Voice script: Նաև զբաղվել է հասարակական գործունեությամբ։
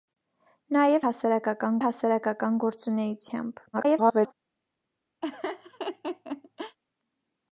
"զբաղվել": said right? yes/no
no